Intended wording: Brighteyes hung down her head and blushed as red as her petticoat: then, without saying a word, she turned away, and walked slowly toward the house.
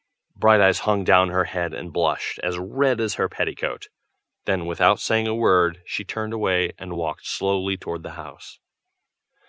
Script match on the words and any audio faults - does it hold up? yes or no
yes